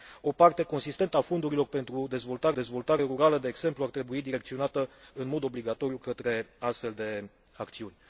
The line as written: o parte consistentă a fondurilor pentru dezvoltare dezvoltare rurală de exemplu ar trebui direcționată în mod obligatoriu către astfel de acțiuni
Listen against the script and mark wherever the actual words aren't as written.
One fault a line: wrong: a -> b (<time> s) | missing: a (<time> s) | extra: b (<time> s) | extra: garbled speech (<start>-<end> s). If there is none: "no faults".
no faults